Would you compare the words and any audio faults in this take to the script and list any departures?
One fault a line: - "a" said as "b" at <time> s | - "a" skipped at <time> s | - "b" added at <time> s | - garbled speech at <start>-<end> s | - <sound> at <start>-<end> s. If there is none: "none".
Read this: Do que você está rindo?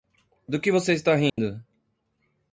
- dropout at 1.3-1.4 s